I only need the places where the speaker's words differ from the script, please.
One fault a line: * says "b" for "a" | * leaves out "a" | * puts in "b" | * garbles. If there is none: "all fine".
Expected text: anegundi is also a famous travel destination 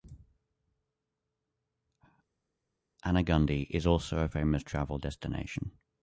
all fine